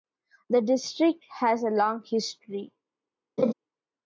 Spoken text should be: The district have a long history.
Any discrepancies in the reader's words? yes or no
yes